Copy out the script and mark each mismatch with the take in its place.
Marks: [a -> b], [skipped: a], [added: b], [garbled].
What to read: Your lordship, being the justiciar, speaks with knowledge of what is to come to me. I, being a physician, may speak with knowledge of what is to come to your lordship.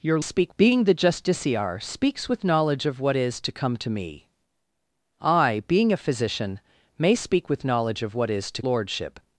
Your [lordship, -> speak] being the justiciar, speaks with knowledge of what is to come to me. I, being a physician, may speak with knowledge of what is to [skipped: come to your] lordship.